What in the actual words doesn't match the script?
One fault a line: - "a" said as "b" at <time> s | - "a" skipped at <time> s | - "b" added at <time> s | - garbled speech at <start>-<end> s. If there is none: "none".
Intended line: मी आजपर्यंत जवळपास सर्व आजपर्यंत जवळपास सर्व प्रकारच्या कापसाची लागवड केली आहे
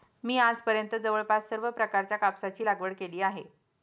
- "आजपर्यंत जवळपास सर्व" skipped at 1.7 s